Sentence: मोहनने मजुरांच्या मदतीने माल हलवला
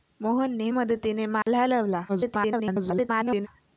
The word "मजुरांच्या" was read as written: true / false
false